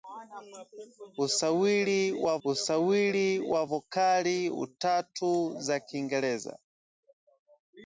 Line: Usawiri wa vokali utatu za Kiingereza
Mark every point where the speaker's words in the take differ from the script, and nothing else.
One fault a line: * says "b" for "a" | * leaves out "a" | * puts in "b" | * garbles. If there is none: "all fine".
* puts in "usawiri wa"